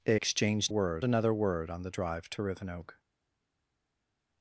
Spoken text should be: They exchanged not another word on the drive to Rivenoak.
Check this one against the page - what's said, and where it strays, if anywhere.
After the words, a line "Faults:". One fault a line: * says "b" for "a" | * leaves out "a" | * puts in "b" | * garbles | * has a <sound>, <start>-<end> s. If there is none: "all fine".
They exchanged word another word on the drive to Rivenoak.
Faults:
* says "word" for "not"